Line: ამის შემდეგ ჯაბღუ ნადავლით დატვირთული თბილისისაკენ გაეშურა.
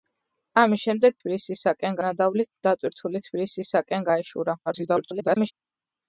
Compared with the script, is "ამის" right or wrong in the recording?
right